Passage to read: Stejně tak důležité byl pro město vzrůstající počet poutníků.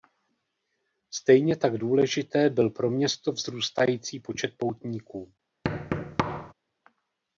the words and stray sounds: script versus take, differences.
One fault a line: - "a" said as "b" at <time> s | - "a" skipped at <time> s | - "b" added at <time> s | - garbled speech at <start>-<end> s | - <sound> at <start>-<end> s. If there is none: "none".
- thud at 5.6-6.5 s